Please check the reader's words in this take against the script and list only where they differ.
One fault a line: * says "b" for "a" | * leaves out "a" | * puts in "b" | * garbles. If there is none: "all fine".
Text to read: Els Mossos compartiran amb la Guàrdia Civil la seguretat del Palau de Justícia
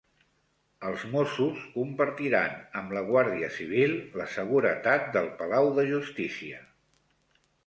all fine